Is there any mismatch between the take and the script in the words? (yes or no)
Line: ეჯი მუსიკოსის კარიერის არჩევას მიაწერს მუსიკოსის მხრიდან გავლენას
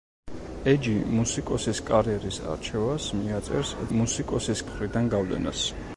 no